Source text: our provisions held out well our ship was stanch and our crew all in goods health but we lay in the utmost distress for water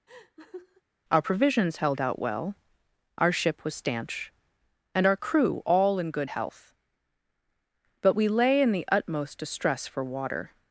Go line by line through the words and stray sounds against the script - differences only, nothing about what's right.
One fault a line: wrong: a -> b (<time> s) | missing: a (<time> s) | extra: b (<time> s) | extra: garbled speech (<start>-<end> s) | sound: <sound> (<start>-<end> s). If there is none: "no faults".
sound: laugh (0.1-0.8 s)
wrong: goods -> good (6.1 s)